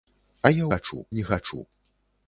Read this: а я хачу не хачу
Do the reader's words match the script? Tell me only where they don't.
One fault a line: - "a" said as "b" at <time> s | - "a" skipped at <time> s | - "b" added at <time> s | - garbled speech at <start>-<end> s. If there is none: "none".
none